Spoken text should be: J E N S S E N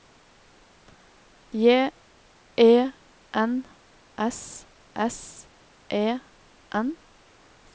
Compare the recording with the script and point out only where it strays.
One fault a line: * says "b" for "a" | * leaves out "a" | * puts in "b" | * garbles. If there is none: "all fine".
all fine